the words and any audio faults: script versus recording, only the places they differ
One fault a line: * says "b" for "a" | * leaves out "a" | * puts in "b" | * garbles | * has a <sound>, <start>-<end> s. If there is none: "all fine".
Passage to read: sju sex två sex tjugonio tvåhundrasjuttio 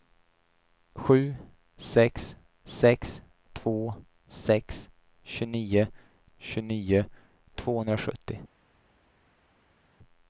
* puts in "sex"
* puts in "tjugonio"